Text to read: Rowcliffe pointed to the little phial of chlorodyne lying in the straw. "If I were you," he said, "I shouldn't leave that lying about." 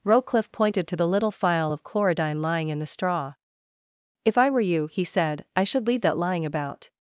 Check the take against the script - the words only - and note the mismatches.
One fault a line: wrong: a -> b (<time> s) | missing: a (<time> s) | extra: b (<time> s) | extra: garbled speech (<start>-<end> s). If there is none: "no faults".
wrong: shouldn't -> should (5.6 s)